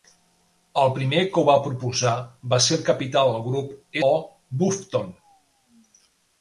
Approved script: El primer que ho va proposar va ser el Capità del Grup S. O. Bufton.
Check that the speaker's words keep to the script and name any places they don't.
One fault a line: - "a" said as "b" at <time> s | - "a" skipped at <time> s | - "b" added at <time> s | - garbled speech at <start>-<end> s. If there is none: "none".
- "S" skipped at 4.0 s